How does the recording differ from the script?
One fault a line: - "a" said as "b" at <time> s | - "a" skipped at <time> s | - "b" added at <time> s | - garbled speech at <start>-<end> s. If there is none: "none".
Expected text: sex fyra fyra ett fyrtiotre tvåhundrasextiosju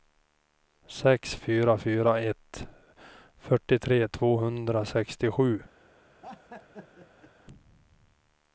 none